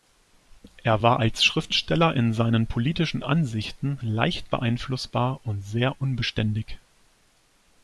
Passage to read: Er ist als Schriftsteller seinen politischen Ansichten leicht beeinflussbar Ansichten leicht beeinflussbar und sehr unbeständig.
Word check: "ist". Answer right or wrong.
wrong